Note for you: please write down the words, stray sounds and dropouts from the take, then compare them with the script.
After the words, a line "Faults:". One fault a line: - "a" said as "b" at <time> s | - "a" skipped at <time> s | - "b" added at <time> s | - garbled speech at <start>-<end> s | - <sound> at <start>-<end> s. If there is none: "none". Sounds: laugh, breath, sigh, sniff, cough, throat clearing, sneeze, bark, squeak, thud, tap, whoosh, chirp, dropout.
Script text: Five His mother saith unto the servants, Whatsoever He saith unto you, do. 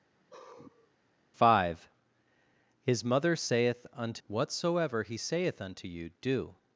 Five His mother saith unto Whatsoever He saith unto you, do.
Faults:
- sigh at 0.2-0.9 s
- "the servants" skipped at 4.2 s